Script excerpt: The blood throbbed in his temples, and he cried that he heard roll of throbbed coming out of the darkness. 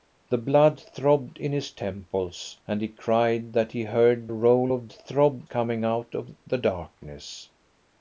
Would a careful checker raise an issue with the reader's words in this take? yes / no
no